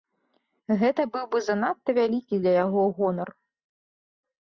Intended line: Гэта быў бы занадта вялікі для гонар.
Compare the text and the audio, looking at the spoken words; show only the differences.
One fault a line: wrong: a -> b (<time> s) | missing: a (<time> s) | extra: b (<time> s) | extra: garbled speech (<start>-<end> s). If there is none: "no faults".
extra: яго (2.6 s)